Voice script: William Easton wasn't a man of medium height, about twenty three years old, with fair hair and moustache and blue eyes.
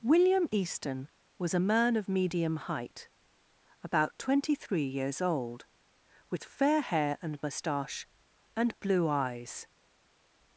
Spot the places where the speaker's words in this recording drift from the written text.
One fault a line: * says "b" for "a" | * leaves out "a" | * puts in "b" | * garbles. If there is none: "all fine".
* says "was" for "wasn't"